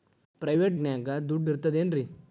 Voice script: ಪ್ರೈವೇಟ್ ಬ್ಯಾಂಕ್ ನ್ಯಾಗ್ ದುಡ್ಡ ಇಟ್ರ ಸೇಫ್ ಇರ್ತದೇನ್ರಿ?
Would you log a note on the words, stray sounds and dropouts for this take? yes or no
yes